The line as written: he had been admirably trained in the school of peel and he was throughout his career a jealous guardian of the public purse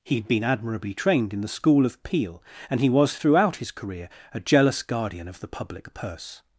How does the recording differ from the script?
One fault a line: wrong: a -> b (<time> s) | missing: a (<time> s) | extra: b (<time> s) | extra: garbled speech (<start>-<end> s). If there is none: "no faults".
no faults